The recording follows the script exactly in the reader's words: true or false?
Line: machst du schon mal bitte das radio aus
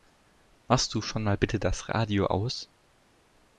true